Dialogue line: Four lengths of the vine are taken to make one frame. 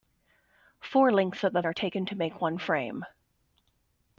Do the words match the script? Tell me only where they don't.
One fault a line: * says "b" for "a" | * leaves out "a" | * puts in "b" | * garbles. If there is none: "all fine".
* leaves out "vine"